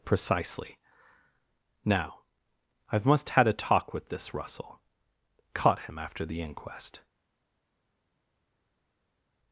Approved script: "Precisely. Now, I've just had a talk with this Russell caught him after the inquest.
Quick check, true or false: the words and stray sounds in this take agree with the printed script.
false